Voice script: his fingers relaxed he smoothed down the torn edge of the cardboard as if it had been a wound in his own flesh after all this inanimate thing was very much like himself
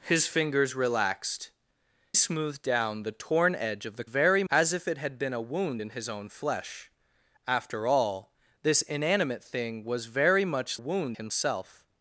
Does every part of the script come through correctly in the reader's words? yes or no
no